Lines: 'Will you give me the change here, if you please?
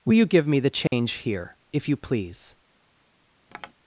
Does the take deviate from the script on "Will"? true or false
false